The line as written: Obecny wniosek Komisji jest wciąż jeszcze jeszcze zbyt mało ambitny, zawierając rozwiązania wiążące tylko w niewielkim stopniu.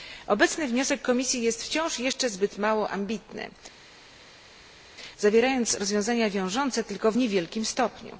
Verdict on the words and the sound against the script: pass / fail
fail